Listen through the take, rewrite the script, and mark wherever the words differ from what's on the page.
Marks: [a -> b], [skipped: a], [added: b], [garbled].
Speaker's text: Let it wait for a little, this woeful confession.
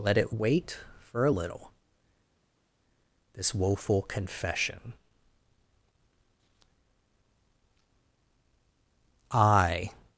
Let it wait for a little, this woeful confession. [added: I]